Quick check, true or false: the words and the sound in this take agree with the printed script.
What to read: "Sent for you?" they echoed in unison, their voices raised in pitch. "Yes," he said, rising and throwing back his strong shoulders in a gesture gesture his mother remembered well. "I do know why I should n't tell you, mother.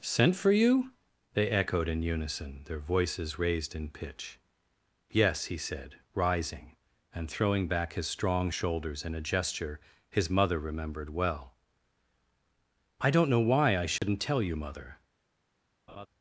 false